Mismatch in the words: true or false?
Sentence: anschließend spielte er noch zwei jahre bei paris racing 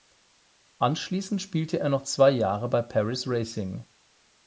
false